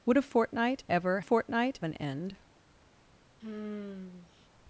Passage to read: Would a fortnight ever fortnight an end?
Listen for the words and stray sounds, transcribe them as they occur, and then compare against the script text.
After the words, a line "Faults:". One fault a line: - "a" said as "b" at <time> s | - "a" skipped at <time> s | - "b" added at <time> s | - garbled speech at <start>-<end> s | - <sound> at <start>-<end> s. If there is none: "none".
Would a fortnight ever fortnight an end?
Faults:
- sigh at 3.4-4.5 s